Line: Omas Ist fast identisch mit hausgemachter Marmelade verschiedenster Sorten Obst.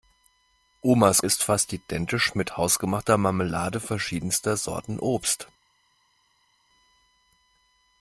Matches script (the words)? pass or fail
pass